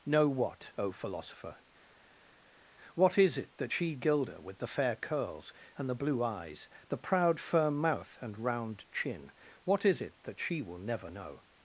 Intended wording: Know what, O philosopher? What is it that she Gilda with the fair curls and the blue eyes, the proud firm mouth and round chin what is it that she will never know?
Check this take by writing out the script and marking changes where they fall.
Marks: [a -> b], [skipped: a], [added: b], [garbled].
Know what, O philosopher? What is it that she Gilda with the fair curls and the blue eyes, the proud firm mouth and round chin what is it that she will never know?